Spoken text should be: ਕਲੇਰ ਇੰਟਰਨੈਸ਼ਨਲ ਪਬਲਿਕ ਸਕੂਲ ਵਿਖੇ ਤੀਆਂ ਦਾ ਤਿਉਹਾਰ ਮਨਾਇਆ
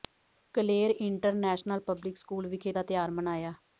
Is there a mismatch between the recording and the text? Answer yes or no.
yes